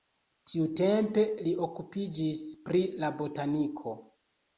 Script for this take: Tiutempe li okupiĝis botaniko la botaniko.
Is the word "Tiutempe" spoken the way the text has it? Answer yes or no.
yes